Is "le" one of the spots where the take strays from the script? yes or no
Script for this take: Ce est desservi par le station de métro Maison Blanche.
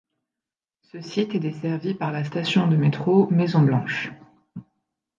yes